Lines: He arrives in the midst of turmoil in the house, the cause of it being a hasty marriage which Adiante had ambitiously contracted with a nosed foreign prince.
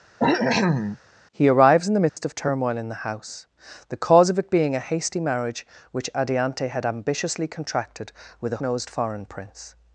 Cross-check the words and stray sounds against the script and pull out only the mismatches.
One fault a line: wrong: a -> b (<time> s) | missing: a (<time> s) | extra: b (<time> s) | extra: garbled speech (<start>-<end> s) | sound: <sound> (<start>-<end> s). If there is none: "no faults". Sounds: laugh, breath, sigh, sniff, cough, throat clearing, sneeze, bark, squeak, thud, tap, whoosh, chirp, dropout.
sound: cough (0.2-1.0 s)
sound: dropout (2.1-2.2 s)